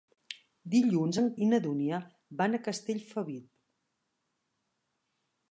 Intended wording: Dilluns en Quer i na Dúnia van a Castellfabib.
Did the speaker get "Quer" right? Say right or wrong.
wrong